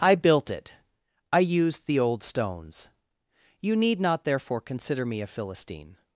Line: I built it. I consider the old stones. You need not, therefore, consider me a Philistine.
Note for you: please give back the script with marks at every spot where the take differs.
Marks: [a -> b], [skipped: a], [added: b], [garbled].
I built it. I [consider -> used] the old stones. You need not, therefore, consider me a Philistine.